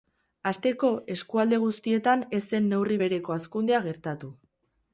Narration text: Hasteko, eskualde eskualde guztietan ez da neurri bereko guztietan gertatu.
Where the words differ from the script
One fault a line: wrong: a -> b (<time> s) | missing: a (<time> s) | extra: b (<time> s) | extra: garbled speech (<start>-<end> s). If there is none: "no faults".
missing: eskualde (1.6 s)
wrong: da -> zen (2.5 s)
wrong: guztietan -> hazkundea (3.4 s)